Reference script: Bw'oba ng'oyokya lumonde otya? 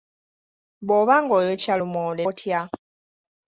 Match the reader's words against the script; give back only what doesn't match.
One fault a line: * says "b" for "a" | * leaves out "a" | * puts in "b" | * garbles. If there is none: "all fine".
all fine